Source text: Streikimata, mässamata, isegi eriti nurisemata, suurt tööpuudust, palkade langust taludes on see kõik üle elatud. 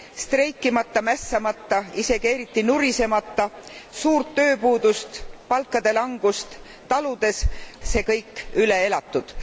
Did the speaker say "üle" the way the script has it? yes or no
yes